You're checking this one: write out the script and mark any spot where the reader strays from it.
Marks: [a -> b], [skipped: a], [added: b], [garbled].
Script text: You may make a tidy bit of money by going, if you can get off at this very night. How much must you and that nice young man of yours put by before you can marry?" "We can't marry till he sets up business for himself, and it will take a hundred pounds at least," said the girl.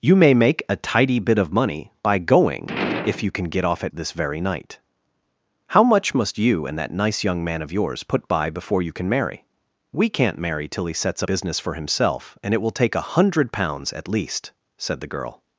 You may make a tidy bit of money by going, if you can get off at this very night. How much must you and that nice young man of yours put by before you can marry?" "We can't marry till he sets up business for himself, and it will take a hundred pounds at least," said the girl.